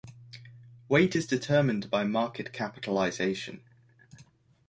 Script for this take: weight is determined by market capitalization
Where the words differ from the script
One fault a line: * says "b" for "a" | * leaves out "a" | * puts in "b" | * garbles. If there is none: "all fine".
all fine